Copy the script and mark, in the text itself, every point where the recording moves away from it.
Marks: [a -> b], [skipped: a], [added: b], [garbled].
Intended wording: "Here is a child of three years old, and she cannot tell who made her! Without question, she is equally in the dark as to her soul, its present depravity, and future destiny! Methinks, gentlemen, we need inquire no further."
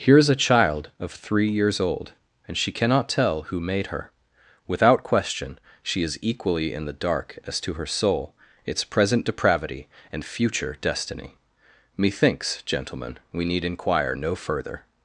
"Here is a child of three years old, and she cannot tell who made her! Without question, she is equally in the dark as to her soul, its present depravity, and future destiny! Methinks, gentlemen, we need inquire no further."